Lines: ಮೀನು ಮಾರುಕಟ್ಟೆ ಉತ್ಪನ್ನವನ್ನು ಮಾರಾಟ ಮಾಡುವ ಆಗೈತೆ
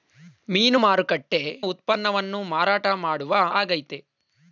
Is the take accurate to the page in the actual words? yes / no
yes